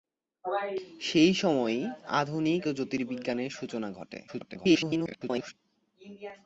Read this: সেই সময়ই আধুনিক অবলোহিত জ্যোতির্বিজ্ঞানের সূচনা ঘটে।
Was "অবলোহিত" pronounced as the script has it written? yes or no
no